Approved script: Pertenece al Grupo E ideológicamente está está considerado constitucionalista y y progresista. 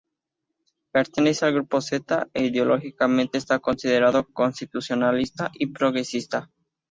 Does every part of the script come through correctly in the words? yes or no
no